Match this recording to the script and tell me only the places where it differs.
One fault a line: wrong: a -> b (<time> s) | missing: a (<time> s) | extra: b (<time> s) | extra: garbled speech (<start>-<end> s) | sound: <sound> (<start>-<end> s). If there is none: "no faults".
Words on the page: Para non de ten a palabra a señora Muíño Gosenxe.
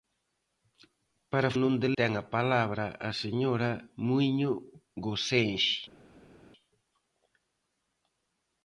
no faults